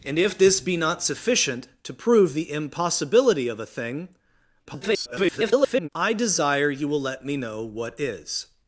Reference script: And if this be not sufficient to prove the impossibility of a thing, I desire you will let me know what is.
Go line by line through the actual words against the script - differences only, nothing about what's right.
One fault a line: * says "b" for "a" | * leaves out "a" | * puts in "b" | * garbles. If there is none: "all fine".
* garbles